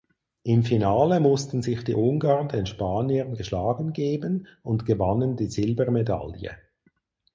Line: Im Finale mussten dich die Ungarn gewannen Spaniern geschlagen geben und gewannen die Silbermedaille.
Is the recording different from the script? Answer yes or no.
yes